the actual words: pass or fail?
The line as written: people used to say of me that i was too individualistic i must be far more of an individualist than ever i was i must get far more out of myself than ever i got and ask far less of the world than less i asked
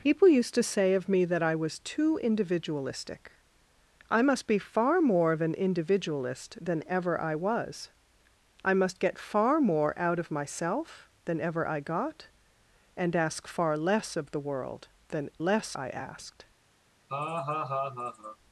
pass